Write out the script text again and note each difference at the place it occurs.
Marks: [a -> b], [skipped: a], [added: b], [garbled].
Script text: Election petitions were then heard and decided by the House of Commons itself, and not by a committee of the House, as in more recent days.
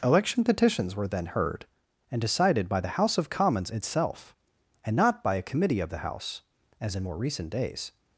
Election petitions were then heard and decided by the House of Commons itself, and not by a committee of the House, as in more recent days.